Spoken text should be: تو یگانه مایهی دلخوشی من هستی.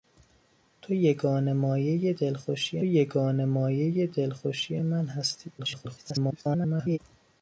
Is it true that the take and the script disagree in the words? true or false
true